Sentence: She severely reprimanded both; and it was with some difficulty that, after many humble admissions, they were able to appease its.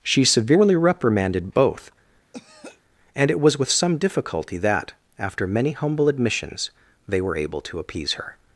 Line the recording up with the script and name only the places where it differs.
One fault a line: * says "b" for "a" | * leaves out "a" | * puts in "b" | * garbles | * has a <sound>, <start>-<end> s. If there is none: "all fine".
* has a throat clearing, 2.3-2.8 s
* says "her" for "its"